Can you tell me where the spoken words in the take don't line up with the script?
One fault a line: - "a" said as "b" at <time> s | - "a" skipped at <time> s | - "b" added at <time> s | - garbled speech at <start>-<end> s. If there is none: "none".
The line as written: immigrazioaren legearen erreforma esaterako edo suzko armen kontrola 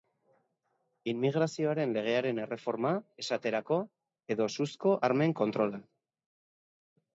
none